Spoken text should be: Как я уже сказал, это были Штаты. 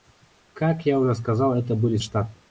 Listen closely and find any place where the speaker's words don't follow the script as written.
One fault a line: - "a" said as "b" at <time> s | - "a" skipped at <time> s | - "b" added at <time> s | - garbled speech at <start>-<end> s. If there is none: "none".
none